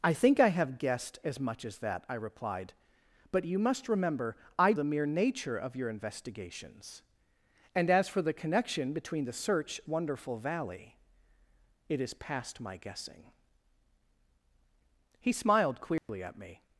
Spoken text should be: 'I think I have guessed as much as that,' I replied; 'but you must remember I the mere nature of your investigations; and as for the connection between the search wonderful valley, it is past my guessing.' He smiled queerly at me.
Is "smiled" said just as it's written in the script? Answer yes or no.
yes